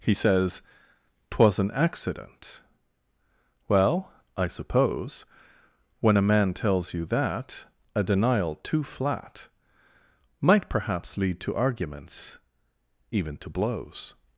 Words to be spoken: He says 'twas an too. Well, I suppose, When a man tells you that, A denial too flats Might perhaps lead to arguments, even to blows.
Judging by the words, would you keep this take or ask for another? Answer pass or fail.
fail